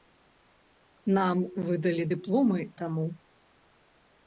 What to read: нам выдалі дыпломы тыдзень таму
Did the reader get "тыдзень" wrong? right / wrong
wrong